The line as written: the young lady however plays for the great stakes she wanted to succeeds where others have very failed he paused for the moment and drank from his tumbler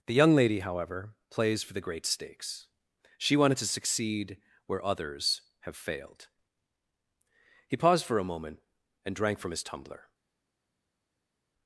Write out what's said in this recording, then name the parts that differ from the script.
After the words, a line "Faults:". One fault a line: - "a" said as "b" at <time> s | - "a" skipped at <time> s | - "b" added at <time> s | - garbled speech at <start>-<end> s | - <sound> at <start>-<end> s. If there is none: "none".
the young lady however plays for the great stakes she wanted to succeed where others have failed he paused for a moment and drank from his tumbler
Faults:
- "succeeds" said as "succeed" at 3.7 s
- "very" skipped at 5.7 s
- "the" said as "a" at 8.2 s